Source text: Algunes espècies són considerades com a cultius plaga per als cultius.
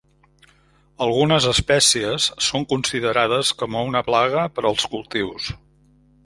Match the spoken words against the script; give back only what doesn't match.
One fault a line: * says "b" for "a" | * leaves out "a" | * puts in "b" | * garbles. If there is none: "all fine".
* says "una" for "cultius"